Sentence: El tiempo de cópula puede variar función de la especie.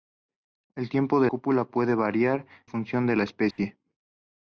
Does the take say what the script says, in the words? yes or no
yes